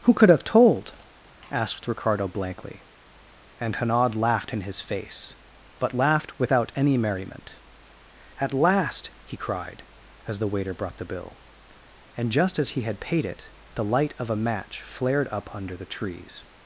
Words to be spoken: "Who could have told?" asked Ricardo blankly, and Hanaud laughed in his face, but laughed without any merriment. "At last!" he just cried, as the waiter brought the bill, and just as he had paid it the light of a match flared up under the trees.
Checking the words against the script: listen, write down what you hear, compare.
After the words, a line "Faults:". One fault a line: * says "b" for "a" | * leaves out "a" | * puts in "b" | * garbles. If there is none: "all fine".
"Who could have told?" asked Ricardo blankly, and Hanaud laughed in his face, but laughed without any merriment. "At last!" he cried, as the waiter brought the bill, and just as he had paid it the light of a match flared up under the trees.
Faults:
* leaves out "just"